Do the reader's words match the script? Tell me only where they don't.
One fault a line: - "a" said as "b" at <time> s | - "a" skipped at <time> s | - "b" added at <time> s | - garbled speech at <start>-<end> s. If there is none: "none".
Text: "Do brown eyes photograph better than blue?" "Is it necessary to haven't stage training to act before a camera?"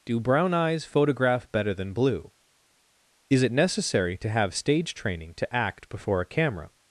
- "haven't" said as "have" at 4.3 s